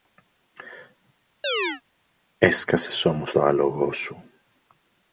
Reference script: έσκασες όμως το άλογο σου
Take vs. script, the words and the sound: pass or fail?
fail